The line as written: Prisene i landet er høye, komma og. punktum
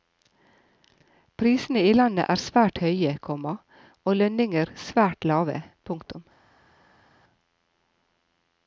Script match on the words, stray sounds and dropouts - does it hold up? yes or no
no